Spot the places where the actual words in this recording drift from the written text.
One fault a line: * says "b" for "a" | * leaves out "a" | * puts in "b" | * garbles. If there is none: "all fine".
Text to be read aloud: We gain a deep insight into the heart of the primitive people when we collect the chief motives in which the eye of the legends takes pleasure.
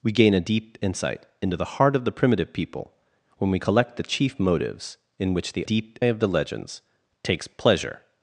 * says "deep" for "eye"